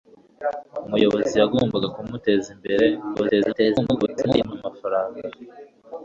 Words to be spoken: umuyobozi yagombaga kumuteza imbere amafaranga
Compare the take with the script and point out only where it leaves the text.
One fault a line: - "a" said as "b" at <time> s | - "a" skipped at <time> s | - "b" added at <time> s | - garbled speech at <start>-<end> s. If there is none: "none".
- garbled speech at 3.1-4.5 s